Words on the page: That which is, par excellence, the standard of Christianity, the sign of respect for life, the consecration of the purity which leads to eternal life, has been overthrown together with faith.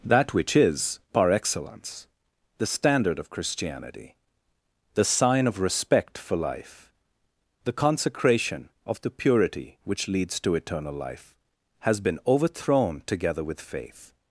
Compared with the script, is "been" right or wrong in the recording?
right